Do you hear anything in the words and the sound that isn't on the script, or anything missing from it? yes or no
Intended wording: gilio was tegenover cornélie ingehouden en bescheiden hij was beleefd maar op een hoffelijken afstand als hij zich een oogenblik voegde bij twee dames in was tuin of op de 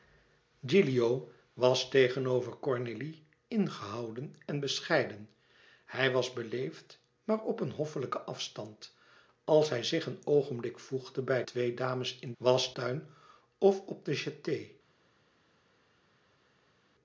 no